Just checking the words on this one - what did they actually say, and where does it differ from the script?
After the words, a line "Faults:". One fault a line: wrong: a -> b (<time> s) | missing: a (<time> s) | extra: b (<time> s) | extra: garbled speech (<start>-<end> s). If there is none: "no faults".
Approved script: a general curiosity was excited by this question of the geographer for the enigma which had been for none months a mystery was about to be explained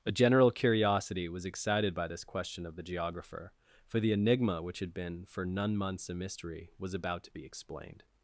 a general curiosity was excited by this question of the geographer for the enigma which had been for none months a mystery was about to be explained
Faults:
no faults